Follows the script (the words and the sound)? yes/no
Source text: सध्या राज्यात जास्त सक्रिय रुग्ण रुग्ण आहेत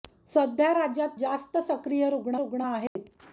no